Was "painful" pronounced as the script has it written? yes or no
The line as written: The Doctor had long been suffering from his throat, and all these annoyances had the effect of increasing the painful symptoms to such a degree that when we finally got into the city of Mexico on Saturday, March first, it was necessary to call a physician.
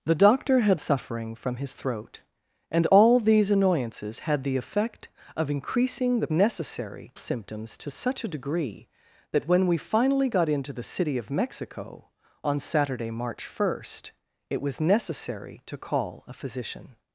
no